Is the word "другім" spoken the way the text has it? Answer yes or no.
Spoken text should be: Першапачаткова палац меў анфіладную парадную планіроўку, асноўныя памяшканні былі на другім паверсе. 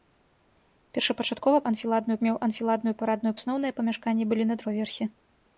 no